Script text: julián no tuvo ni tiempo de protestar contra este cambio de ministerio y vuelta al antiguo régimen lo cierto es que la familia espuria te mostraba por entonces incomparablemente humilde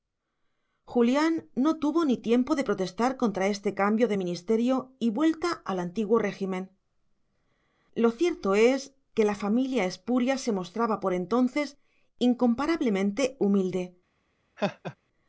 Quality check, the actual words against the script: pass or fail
fail